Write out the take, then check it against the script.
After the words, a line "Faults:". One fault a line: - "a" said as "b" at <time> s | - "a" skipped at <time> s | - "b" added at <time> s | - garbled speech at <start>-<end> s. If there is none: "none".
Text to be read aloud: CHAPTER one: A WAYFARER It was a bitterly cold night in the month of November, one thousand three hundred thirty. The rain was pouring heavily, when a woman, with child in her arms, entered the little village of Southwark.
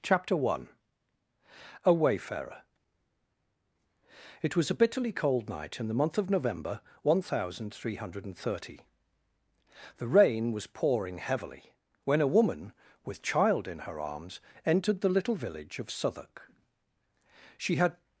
CHAPTER one: A WAYFARER It was a bitterly cold night in the month of November, one thousand three hundred thirty. The rain was pouring heavily, when a woman, with child in her arms, entered the little village of Southwark. She had
Faults:
- "She had" added at 17.6 s